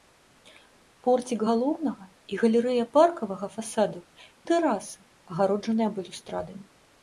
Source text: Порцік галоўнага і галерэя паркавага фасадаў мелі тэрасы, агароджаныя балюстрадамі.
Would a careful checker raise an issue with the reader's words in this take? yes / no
yes